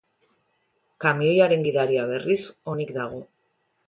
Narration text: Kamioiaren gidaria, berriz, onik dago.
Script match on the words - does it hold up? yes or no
yes